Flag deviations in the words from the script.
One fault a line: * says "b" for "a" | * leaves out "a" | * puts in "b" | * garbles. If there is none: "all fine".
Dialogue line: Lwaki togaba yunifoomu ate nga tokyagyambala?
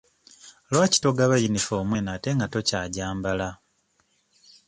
* puts in "eno"